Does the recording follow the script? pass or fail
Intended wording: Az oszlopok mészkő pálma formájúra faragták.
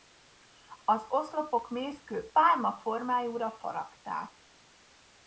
pass